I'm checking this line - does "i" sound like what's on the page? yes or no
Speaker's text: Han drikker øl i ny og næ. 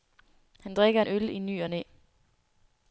yes